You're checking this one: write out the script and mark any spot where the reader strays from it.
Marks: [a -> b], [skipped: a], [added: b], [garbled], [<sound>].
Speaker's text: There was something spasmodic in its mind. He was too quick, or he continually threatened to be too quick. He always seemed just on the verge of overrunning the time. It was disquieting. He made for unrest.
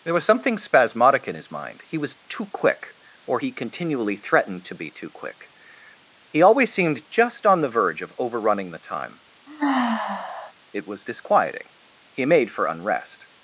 There was something spasmodic in [its -> his] mind. He was too quick, or he continually threatened to be too quick. He always seemed just on the verge of overrunning the time. [sigh] It was disquieting. He made for unrest.